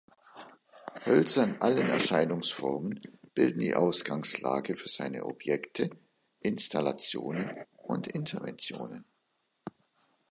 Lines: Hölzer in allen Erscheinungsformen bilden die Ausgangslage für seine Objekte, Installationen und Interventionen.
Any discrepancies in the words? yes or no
no